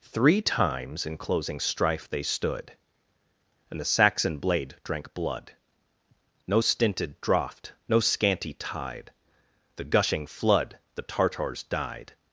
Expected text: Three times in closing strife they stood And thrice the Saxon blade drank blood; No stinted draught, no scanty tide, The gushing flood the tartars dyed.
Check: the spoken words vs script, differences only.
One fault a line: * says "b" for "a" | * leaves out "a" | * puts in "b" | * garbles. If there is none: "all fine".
* leaves out "thrice"